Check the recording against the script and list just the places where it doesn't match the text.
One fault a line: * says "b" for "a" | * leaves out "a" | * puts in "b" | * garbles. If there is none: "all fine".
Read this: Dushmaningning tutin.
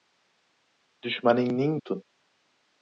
all fine